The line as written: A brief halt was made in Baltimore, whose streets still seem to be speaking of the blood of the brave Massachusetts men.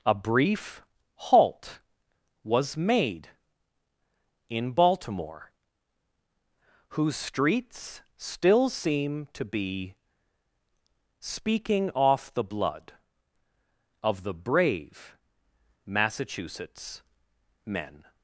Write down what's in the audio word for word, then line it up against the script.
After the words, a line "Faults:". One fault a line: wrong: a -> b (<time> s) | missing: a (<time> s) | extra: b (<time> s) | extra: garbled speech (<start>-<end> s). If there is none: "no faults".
A brief halt was made in Baltimore, whose streets still seem to be speaking off the blood of the brave Massachusetts men.
Faults:
wrong: of -> off (11.9 s)